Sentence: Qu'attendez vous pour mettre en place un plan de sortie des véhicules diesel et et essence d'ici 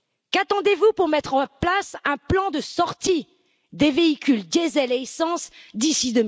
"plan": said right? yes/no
yes